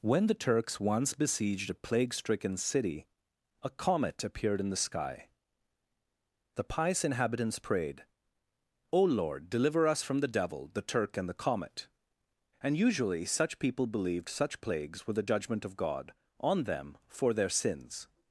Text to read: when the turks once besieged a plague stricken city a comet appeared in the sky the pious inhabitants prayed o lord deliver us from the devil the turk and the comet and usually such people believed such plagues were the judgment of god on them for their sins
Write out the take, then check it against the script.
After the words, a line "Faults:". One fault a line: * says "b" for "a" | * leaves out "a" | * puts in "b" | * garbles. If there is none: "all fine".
when the turks once besieged a plague stricken city a comet appeared in the sky the pious inhabitants prayed o lord deliver us from the devil the turk and the comet and usually such people believed such plagues were the judgment of god on them for their sins
Faults:
all fine